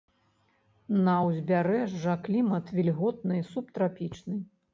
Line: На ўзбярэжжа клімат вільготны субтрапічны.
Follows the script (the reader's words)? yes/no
yes